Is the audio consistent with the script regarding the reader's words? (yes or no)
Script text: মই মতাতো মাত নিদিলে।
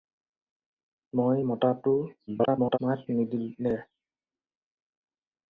no